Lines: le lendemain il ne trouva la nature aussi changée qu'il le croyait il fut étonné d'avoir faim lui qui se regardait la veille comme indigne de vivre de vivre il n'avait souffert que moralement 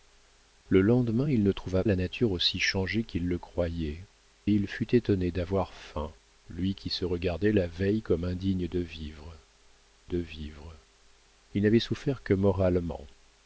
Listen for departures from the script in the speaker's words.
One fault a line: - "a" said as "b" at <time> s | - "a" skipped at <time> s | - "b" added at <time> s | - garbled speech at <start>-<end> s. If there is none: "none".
none